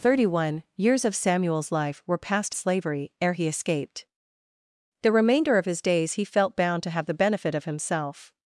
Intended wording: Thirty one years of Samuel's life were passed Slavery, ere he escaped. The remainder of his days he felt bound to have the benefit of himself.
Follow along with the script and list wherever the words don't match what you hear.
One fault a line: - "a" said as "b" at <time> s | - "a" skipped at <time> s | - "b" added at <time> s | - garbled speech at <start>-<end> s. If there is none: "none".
none